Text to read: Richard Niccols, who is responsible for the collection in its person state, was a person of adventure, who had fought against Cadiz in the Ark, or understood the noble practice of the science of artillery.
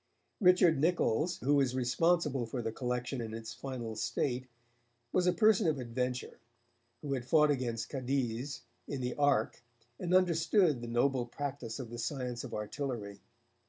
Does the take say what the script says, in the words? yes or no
no